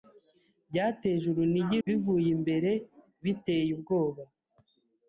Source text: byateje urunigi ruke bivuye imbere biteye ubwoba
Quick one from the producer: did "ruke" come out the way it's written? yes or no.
no